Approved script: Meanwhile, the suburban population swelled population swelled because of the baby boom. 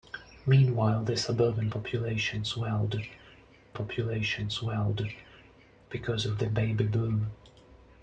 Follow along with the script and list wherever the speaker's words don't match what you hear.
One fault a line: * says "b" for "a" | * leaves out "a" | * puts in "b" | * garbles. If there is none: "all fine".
all fine